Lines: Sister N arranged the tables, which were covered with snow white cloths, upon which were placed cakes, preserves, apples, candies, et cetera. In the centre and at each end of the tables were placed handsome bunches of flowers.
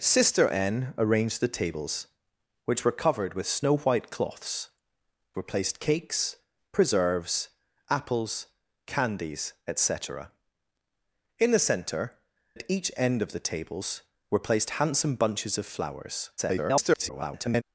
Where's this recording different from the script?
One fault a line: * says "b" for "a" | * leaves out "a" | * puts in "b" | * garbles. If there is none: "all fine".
* leaves out "upon which"
* leaves out "and"
* garbles